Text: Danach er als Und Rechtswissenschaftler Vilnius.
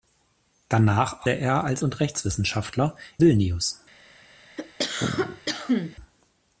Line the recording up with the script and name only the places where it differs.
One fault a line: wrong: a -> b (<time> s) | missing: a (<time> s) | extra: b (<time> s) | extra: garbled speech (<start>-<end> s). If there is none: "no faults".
no faults